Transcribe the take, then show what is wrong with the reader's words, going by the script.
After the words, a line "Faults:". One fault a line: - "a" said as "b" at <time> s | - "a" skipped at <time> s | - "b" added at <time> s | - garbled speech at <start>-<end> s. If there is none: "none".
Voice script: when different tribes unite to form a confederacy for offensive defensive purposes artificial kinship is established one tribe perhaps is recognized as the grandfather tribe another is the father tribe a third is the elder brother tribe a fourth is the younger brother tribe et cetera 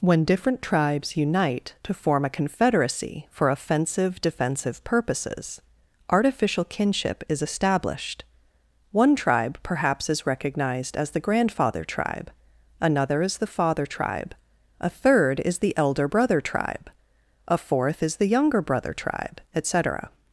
when different tribes unite to form a confederacy for offensive defensive purposes artificial kinship is established one tribe perhaps is recognized as the grandfather tribe another is the father tribe a third is the elder brother tribe a fourth is the younger brother tribe et cetera
Faults:
none